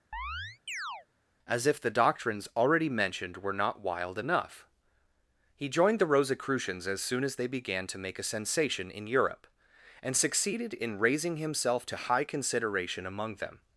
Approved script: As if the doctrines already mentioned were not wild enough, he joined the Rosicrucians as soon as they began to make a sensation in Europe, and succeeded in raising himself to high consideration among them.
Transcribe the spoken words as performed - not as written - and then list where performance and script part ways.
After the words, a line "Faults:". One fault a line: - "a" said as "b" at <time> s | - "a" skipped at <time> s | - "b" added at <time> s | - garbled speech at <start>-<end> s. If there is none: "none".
As if the doctrines already mentioned were not wild enough, he joined the Rosicrucians as soon as they began to make a sensation in Europe, and succeeded in raising himself to high consideration among them.
Faults:
none